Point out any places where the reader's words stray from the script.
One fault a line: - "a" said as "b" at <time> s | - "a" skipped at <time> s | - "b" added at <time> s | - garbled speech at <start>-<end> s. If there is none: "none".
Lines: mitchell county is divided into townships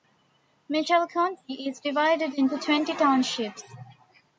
- "twenty" added at 2.6 s